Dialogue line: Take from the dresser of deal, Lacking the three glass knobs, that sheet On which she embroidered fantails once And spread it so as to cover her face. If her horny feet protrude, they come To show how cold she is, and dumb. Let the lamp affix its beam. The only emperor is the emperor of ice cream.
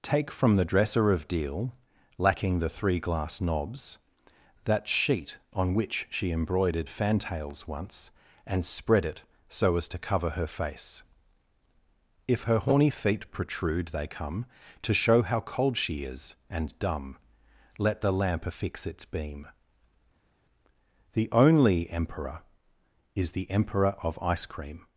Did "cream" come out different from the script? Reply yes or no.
no